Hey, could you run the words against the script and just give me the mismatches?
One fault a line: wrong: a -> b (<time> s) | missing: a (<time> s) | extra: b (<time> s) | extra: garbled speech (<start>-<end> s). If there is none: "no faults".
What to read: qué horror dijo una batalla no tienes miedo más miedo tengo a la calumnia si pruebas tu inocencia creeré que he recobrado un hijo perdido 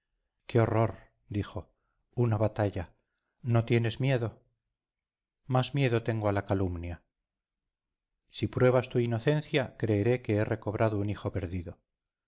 no faults